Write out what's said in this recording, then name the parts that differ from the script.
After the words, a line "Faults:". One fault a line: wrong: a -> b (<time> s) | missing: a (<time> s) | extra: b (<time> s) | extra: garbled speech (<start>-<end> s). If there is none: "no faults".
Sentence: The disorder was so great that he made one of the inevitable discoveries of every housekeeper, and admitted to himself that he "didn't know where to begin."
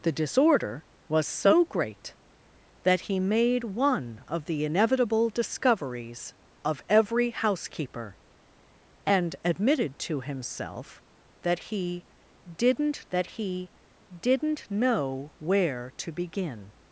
The disorder was so great that he made one of the inevitable discoveries of every housekeeper, and admitted to himself that he "didn't that he didn't know where to begin."
Faults:
extra: that he didn't (13.1 s)